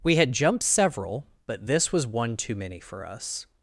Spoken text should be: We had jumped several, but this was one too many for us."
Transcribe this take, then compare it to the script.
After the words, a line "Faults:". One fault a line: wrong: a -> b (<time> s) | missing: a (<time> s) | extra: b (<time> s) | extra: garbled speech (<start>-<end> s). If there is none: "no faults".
We had jumped several, but this was one too many for us."
Faults:
no faults